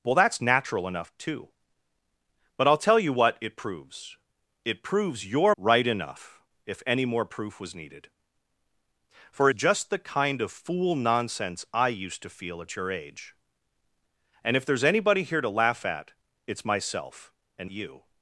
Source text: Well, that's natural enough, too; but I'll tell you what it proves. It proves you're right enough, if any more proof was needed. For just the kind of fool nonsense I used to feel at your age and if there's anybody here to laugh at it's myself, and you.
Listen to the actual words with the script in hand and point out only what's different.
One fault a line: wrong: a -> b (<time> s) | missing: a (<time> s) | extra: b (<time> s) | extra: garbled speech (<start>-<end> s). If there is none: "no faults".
no faults